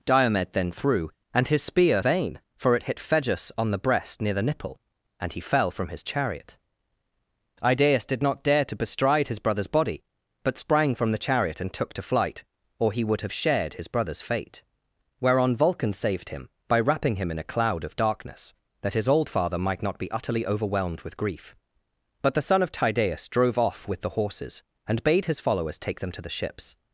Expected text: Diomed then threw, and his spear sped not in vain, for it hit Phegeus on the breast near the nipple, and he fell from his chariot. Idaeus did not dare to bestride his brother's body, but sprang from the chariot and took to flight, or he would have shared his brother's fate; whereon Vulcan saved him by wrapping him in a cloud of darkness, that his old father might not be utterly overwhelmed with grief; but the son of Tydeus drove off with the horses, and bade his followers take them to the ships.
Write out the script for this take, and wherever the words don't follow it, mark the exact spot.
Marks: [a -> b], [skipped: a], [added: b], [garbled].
Diomed then threw, and his spear [skipped: sped not in] vain, for it hit Phegeus on the breast near the nipple, and he fell from his chariot. Idaeus did not dare to bestride his brother's body, but sprang from the chariot and took to flight, or he would have shared his brother's fate; whereon Vulcan saved him by wrapping him in a cloud of darkness, that his old father might not be utterly overwhelmed with grief; but the son of Tydeus drove off with the horses, and bade his followers take them to the ships.